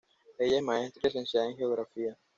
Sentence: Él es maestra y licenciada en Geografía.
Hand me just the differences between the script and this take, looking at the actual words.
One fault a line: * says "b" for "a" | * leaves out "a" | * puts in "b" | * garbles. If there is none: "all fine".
* says "Ella" for "Él"